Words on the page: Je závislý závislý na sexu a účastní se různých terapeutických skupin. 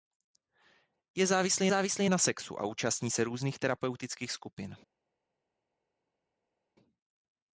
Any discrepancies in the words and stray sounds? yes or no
no